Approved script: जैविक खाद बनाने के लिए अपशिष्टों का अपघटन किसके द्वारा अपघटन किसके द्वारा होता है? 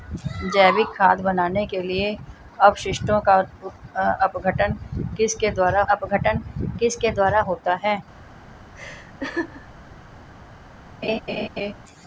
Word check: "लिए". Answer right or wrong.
right